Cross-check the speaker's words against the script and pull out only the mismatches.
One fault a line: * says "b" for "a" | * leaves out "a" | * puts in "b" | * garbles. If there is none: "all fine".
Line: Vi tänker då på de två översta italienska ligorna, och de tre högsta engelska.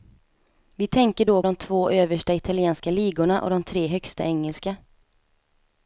* leaves out "på"